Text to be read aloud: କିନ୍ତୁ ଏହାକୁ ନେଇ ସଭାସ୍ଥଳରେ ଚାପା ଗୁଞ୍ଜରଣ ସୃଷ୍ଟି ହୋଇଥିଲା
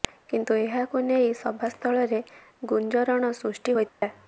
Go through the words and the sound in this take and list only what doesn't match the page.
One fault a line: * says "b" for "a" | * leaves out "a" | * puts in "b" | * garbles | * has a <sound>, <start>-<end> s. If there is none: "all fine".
* leaves out "ଚାପା"
* has a dropout, 3.9-4.0 s